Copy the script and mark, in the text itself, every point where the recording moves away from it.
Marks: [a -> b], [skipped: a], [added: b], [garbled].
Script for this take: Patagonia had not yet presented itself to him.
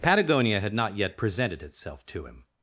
Patagonia had not yet presented itself to him.